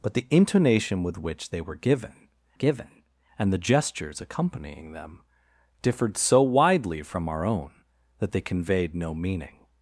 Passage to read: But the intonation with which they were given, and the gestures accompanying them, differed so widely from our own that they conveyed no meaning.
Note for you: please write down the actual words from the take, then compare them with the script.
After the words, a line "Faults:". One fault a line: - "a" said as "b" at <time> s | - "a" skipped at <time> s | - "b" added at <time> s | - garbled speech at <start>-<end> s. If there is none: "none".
But the intonation with which they were given given, and the gestures accompanying them, differed so widely from our own that they conveyed no meaning.
Faults:
- "given" added at 2.5 s